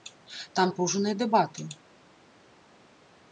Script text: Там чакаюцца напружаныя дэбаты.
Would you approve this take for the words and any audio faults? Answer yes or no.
no